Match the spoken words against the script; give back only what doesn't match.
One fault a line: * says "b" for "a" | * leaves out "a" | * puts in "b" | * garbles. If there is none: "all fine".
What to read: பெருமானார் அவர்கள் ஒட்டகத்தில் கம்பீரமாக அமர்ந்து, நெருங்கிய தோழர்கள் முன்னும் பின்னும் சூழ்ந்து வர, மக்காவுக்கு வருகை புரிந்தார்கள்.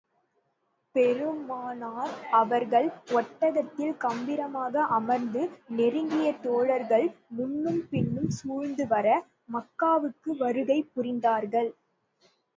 all fine